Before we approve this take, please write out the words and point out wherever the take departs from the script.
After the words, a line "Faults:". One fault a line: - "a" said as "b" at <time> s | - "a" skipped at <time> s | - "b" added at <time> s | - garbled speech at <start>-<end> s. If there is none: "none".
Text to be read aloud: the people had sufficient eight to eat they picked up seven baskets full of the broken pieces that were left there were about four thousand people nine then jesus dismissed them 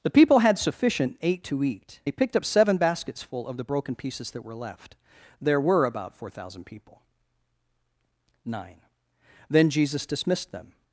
the people had sufficient eight to eat they picked up seven baskets full of the broken pieces that were left there were about four thousand people nine then jesus dismissed them
Faults:
none